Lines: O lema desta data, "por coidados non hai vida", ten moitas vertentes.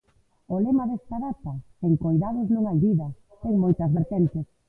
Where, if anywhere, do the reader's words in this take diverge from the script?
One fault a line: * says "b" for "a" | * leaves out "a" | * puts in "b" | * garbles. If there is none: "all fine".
* says "sen" for "por"